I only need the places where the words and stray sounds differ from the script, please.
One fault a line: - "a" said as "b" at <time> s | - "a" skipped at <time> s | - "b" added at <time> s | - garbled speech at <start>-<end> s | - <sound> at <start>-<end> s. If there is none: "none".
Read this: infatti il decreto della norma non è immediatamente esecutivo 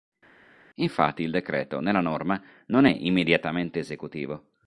- "della" said as "nella" at 1.8 s